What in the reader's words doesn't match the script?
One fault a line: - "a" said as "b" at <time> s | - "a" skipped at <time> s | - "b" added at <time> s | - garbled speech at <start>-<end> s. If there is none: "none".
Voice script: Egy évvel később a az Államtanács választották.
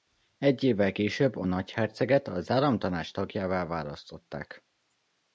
- "nagyherceget" added at 1.5 s
- "tagjává" added at 3.1 s